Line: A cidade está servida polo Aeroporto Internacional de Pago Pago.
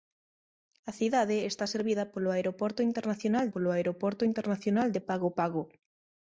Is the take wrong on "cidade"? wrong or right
right